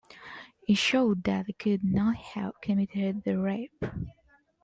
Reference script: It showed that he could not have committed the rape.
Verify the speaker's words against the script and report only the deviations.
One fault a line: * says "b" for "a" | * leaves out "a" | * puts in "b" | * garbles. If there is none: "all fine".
all fine